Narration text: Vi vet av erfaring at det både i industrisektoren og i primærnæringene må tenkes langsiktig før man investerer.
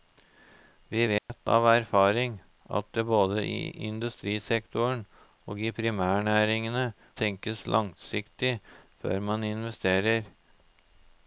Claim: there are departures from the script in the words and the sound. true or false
true